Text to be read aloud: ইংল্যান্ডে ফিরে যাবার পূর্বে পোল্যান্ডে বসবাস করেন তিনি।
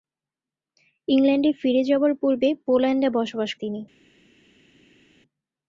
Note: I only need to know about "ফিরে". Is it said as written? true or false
true